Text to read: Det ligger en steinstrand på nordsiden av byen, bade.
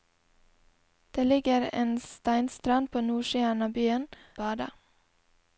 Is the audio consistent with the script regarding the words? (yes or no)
yes